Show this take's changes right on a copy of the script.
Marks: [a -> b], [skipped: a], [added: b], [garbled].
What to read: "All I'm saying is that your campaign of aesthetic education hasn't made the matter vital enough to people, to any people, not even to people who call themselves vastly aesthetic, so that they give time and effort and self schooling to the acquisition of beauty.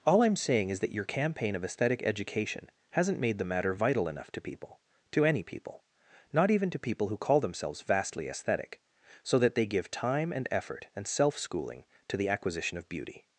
"All I'm saying is that your campaign of aesthetic education hasn't made the matter vital enough to people, to any people, not even to people who call themselves vastly aesthetic, so that they give time and effort and self schooling to the acquisition of beauty.